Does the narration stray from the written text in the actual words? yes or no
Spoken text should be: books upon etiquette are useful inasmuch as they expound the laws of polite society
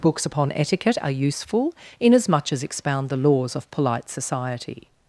yes